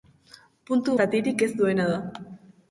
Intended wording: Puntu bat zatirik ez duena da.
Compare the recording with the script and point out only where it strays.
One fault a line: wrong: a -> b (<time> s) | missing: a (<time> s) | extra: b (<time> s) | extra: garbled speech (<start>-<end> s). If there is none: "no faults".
missing: bat (0.9 s)